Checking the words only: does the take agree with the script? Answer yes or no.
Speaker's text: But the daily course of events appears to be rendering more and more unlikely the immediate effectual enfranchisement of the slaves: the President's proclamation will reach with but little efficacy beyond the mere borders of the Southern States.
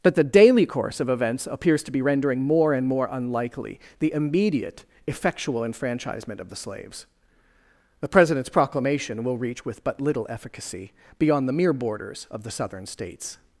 yes